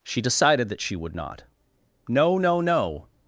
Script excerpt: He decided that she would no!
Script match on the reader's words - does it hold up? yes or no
no